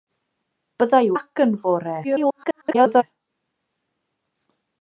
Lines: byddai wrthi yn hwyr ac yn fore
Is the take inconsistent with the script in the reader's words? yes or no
yes